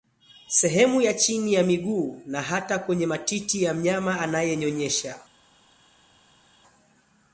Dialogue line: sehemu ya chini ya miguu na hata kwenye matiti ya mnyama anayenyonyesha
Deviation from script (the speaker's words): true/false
false